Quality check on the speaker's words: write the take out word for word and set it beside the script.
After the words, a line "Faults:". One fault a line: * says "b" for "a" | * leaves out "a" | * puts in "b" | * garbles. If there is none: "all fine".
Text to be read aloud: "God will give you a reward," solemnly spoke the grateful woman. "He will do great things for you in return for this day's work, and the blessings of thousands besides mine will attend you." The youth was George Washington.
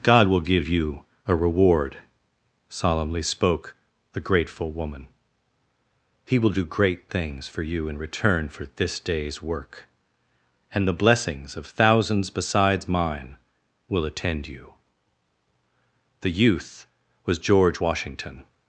"God will give you a reward," solemnly spoke the grateful woman. "He will do great things for you in return for this day's work, and the blessings of thousands besides mine will attend you." The youth was George Washington.
Faults:
all fine